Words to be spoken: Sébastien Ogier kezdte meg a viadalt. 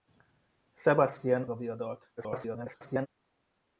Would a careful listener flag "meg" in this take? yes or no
yes